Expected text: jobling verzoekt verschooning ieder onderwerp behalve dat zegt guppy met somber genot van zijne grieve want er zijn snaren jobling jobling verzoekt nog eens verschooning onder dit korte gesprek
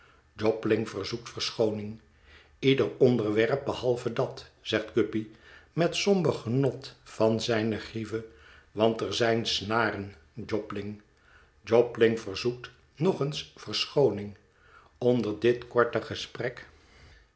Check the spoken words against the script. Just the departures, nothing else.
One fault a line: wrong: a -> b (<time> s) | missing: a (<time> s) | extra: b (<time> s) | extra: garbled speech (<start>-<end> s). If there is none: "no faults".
no faults